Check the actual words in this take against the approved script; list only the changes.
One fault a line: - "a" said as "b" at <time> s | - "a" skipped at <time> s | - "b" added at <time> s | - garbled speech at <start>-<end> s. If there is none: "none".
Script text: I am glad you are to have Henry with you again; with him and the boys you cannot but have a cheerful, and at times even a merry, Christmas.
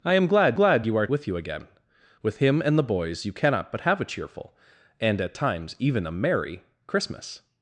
- "glad" added at 0.5 s
- "to have Henry" skipped at 1.1 s